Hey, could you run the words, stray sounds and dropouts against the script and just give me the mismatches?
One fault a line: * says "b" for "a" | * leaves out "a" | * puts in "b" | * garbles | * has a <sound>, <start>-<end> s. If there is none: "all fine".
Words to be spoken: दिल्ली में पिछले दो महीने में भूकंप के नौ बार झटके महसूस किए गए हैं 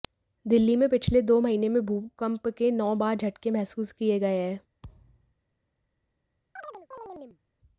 * has a thud, 4.8-5.3 s
* has a chirp, 6.6-7.4 s